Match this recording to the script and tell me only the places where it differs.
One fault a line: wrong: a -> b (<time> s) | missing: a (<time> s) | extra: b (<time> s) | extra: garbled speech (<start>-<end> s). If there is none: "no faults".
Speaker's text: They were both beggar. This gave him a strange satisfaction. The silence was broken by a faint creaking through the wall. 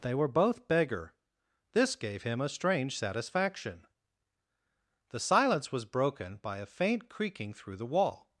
no faults